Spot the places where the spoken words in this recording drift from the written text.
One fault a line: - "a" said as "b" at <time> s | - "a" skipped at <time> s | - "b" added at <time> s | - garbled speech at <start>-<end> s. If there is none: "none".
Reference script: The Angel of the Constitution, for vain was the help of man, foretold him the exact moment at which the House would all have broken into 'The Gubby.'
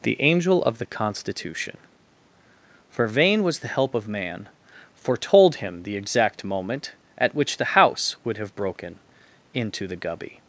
- "all" skipped at 8.4 s